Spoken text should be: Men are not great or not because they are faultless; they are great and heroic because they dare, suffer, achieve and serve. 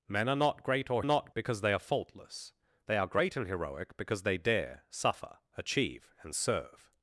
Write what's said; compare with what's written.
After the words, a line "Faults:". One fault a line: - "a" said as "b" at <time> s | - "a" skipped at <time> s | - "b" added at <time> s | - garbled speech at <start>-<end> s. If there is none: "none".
Men are not great or not because they are faultless; they are great and heroic because they dare, suffer, achieve and serve.
Faults:
none